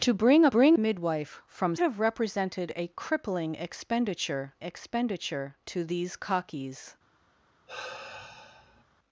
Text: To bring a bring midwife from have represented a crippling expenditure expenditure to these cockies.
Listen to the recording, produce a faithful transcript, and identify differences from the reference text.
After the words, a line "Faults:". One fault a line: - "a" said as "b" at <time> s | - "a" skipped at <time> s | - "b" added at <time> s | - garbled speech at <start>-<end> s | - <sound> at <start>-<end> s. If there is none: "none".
To bring a bring midwife from have represented a crippling expenditure expenditure to these cockies.
Faults:
- sigh at 7.7-8.8 s